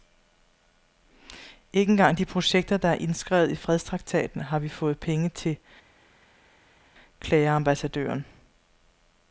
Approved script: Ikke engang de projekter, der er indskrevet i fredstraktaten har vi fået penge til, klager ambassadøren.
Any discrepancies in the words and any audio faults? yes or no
no